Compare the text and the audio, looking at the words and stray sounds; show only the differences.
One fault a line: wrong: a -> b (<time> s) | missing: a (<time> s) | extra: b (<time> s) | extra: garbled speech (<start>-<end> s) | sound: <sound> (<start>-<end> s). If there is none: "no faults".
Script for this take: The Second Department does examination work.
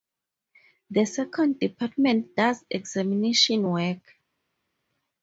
no faults